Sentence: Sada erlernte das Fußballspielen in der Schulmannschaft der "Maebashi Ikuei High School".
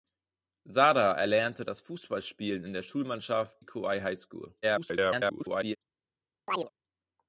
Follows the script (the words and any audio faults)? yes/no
no